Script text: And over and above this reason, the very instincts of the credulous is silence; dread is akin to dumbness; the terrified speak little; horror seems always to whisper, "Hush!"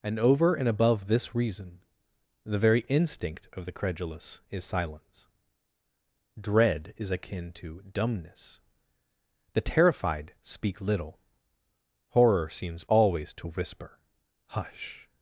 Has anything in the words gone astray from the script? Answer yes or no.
yes